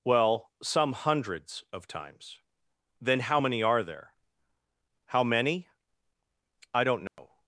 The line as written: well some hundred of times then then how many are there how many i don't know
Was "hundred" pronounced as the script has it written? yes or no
no